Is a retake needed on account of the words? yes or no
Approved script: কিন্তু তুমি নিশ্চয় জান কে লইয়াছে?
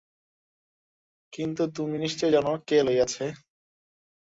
no